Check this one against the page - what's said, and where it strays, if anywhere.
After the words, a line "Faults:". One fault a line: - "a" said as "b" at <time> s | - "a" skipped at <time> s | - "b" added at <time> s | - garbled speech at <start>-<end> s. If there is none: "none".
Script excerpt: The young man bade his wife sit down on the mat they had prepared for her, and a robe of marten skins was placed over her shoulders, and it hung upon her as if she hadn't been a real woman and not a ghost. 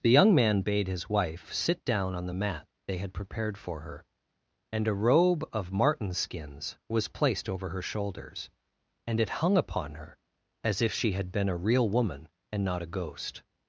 The young man bade his wife sit down on the mat they had prepared for her, and a robe of marten skins was placed over her shoulders, and it hung upon her as if she had been a real woman and not a ghost.
Faults:
- "hadn't" said as "had" at 11.1 s